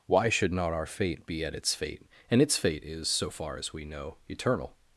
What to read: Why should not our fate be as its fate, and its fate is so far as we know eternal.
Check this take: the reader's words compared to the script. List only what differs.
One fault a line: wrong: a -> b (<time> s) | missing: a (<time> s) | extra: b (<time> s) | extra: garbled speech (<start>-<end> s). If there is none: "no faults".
wrong: as -> at (1.4 s)